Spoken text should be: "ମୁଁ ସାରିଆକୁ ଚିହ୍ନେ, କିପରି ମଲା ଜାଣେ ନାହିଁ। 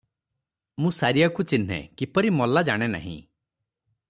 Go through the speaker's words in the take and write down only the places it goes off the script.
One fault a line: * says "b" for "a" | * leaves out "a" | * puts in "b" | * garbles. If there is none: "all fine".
all fine